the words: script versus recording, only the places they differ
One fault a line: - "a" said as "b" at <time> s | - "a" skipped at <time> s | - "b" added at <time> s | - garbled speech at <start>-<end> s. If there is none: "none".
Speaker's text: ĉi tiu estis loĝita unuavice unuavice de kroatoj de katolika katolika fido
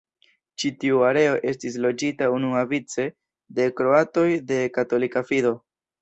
- "areo" added at 1.1 s
- "unuavice" skipped at 3.0 s
- "katolika" skipped at 5.2 s